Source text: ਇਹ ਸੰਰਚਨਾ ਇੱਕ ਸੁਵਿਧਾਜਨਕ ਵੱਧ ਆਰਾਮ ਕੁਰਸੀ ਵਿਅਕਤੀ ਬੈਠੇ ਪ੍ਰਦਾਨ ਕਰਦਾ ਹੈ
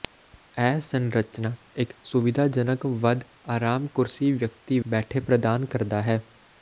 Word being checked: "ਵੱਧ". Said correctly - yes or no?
yes